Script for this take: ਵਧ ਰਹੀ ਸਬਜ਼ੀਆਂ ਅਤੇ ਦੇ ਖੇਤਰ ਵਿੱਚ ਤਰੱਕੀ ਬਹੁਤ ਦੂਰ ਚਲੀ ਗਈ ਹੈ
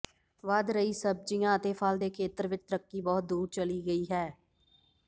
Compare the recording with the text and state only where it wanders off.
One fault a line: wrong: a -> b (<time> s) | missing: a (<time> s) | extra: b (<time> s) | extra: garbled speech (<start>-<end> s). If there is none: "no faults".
extra: ਫਲ (1.7 s)